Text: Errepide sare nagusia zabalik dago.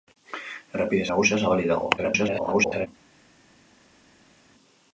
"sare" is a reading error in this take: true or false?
true